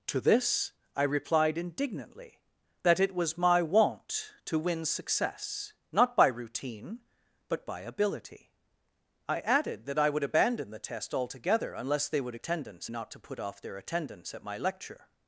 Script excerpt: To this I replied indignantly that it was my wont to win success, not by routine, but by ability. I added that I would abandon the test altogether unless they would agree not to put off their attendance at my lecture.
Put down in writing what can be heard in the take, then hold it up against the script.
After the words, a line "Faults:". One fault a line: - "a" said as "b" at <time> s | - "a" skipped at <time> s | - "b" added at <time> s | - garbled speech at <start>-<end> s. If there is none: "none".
To this I replied indignantly that it was my wont to win success, not by routine, but by ability. I added that I would abandon the test altogether unless they would attendance not to put off their attendance at my lecture.
Faults:
- "agree" said as "attendance" at 12.3 s